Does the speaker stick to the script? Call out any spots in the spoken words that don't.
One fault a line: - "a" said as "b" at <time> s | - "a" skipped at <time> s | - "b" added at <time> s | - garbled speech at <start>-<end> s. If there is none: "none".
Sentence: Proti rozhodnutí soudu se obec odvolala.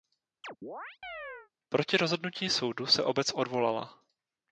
none